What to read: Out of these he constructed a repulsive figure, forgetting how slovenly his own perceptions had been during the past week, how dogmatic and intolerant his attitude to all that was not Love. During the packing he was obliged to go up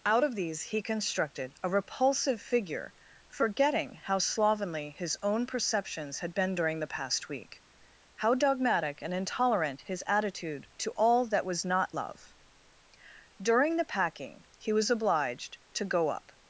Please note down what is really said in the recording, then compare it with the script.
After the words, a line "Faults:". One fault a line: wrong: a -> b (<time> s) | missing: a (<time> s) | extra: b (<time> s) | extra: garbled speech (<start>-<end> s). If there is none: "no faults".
Out of these he constructed a repulsive figure, forgetting how slovenly his own perceptions had been during the past week, how dogmatic and intolerant his attitude to all that was not Love. During the packing he was obliged to go up
Faults:
no faults